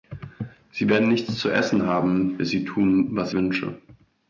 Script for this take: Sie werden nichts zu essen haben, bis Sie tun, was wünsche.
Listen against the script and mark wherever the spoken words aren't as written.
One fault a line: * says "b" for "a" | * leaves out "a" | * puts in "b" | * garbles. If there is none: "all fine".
all fine